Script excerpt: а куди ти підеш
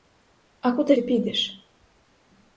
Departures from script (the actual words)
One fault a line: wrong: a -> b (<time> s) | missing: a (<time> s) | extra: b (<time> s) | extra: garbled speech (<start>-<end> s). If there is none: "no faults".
no faults